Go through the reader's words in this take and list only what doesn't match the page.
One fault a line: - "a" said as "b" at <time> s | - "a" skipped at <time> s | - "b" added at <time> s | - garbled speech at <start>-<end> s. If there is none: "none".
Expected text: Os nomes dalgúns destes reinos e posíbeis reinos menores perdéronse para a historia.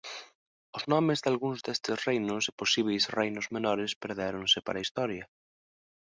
none